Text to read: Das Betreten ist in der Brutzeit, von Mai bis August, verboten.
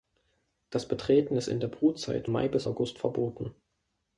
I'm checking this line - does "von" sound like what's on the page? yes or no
no